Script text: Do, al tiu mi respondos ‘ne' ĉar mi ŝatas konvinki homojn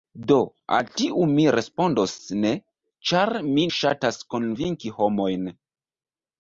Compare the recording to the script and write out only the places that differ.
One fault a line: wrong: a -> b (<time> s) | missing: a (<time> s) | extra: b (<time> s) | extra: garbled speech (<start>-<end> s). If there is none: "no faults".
no faults